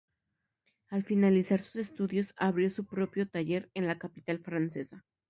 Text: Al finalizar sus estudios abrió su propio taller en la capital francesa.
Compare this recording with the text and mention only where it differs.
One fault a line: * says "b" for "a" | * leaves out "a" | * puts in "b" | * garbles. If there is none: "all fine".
all fine